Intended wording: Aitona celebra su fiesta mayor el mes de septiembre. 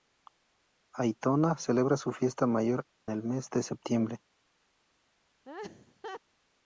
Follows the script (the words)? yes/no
yes